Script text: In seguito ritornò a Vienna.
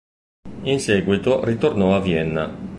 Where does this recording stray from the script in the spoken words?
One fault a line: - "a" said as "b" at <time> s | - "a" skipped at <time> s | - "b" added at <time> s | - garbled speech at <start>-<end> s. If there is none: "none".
none